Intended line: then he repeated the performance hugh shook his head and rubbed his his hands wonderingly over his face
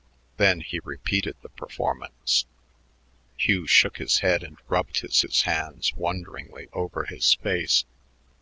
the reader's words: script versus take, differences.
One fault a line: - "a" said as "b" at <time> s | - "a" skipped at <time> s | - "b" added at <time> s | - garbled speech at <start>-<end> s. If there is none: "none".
none